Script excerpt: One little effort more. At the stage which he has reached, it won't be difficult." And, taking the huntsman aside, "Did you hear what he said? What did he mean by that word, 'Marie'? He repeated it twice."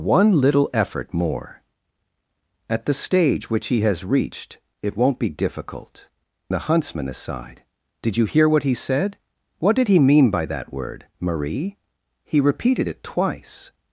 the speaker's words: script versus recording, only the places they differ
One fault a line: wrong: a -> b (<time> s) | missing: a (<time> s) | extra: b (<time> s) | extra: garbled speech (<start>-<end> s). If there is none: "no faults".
missing: And taking (6.1 s)